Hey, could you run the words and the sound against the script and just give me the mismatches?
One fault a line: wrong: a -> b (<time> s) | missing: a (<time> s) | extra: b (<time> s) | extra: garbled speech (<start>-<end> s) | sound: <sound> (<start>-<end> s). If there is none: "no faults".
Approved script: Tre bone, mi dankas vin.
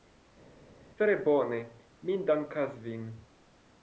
no faults